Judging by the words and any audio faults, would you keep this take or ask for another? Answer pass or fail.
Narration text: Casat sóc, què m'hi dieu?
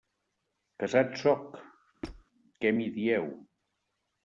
fail